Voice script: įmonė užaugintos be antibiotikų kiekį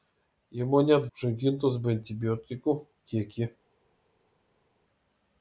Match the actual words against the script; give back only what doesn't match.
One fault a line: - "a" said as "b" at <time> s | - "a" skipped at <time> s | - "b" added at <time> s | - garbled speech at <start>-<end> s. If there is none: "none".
none